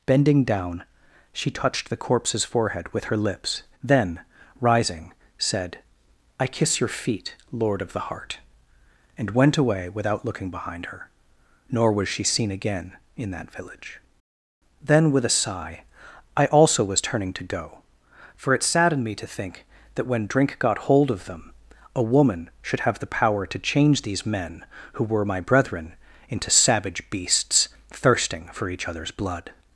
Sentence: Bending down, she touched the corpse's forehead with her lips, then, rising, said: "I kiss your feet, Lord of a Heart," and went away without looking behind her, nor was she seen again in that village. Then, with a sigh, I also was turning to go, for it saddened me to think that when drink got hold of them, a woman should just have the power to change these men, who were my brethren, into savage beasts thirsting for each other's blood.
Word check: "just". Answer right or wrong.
wrong